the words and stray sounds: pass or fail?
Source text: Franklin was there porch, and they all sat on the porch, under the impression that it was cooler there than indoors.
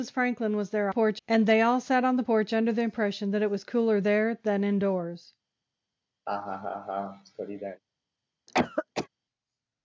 fail